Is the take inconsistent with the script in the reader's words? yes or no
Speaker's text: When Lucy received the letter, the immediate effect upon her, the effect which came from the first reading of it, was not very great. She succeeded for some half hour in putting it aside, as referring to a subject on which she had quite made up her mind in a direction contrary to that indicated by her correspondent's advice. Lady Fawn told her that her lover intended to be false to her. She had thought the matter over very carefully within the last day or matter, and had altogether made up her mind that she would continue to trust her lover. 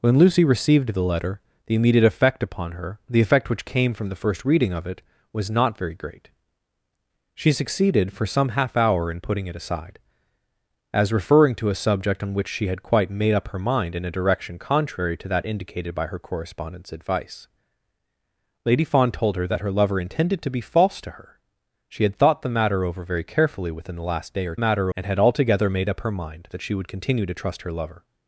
no